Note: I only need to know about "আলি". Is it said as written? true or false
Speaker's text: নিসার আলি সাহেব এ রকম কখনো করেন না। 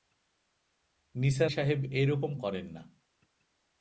false